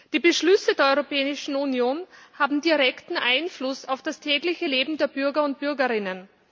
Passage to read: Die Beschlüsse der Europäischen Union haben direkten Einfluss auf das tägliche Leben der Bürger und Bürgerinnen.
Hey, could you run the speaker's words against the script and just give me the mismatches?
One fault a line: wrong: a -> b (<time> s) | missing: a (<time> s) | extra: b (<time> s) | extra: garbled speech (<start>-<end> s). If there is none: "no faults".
no faults